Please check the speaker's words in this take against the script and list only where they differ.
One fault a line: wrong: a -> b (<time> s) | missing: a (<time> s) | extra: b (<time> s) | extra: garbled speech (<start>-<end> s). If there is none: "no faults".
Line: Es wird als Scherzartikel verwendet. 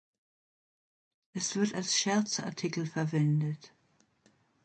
no faults